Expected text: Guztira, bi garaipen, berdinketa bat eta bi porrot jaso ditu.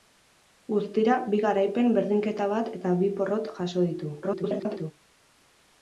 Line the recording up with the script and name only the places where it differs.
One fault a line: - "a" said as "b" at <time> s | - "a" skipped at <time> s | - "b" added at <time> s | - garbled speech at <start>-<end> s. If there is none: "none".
- garbled speech at 4.2-4.9 s